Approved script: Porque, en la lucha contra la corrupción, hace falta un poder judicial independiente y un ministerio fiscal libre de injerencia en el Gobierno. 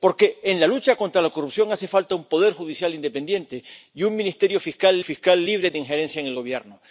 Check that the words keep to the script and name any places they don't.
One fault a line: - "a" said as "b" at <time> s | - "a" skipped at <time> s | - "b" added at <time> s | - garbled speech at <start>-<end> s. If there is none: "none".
- "fiscal" added at 5.0 s